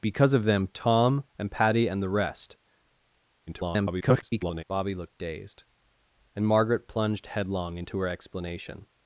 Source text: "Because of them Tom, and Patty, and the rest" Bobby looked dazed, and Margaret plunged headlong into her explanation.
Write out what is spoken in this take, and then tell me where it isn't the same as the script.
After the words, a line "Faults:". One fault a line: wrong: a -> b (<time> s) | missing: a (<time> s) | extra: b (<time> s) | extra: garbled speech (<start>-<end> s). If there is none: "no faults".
"Because of them Tom, and Patty, and the rest" [garbled] Bobby looked dazed, and Margaret plunged headlong into her explanation.
Faults:
extra: garbled speech (3.5-4.6 s)